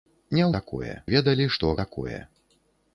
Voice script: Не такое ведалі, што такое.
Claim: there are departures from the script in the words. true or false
false